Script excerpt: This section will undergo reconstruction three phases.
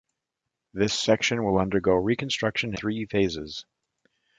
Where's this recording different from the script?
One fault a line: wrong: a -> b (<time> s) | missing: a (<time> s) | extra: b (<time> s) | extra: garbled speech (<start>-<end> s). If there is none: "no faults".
no faults